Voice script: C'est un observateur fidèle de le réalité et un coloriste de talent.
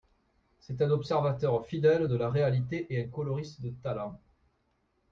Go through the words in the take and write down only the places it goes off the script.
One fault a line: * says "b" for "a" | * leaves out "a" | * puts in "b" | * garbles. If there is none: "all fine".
* says "la" for "le"